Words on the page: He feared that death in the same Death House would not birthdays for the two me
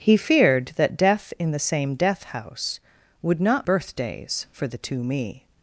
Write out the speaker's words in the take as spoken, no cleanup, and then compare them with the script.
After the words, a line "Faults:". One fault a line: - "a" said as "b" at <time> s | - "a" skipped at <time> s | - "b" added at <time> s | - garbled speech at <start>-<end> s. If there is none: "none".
He feared that death in the same Death House would not birthdays for the two me
Faults:
none